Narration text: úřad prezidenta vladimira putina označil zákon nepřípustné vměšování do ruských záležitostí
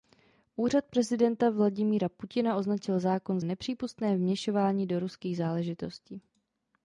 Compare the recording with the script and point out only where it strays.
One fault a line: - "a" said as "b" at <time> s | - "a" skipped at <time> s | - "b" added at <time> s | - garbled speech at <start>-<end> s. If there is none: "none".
none